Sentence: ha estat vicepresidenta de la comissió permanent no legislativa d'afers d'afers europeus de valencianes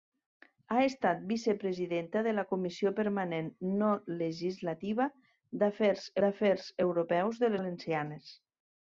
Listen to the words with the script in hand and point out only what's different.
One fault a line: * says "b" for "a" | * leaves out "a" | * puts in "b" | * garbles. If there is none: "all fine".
all fine